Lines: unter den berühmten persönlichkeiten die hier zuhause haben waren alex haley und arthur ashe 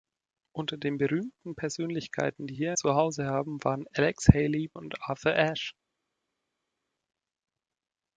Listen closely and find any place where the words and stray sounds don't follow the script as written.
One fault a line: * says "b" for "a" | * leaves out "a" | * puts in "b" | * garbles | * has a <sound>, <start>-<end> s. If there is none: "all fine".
all fine